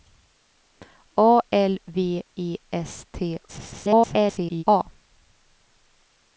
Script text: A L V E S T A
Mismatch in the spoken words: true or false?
true